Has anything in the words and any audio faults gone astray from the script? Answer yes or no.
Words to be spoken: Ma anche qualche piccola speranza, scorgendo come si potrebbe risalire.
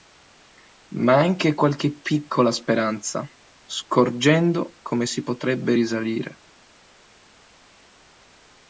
no